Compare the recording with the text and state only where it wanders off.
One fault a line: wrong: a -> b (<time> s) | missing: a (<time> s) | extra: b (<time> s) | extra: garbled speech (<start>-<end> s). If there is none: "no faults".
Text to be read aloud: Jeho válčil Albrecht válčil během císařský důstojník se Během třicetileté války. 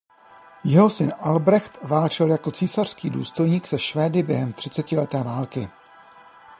wrong: válčil -> syn (0.9 s)
wrong: během -> jako (2.3 s)
extra: Švédy (3.8 s)